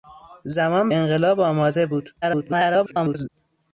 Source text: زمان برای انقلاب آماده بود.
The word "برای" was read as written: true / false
false